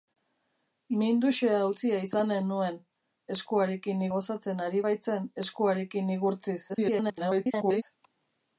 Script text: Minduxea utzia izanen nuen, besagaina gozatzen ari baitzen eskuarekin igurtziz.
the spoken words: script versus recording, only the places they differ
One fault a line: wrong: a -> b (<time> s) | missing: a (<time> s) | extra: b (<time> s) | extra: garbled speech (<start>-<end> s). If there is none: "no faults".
wrong: besagaina -> eskuarekin (3.4 s)
extra: garbled speech (6.7-7.8 s)